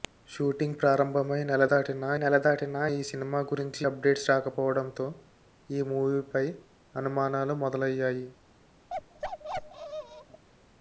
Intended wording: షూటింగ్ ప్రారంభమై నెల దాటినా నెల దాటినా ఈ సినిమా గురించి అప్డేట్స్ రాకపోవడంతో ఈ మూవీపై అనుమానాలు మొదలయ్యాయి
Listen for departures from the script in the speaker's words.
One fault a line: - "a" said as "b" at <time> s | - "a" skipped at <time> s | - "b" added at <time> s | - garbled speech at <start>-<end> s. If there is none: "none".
none